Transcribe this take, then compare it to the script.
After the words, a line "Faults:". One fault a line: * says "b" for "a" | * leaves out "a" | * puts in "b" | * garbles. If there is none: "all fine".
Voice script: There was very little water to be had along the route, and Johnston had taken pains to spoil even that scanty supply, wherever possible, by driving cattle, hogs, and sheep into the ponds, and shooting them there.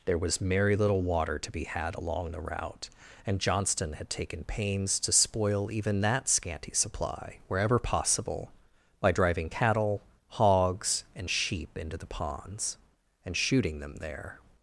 There was merry little water to be had along the route, and Johnston had taken pains to spoil even that scanty supply, wherever possible, by driving cattle, hogs, and sheep into the ponds, and shooting them there.
Faults:
* says "merry" for "very"